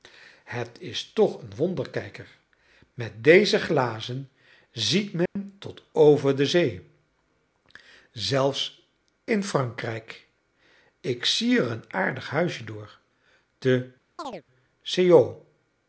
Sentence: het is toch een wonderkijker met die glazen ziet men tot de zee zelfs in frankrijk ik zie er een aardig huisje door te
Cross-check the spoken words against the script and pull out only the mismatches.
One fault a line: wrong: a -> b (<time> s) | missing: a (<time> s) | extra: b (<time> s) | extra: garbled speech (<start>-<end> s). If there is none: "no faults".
wrong: die -> deze (3.2 s)
extra: over (5.9 s)